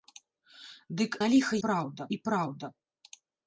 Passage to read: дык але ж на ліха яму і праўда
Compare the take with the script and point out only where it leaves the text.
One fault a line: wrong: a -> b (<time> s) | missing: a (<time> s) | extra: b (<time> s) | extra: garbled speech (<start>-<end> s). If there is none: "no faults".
missing: але ж (1.1 s)
wrong: яму -> праўда (1.7 s)